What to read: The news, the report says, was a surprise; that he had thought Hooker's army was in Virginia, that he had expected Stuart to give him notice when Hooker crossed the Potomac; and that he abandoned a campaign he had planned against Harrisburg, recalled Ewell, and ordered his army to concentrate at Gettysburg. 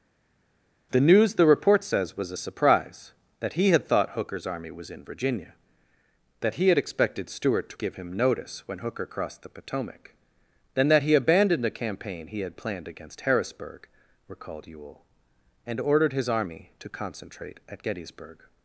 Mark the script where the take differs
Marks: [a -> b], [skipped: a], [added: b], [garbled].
The news, the report says, was a surprise; that he had thought Hooker's army was in Virginia, that he had expected Stuart to give him notice when Hooker crossed the Potomac; [and -> then] that he abandoned a campaign he had planned against Harrisburg, recalled Ewell, and ordered his army to concentrate at Gettysburg.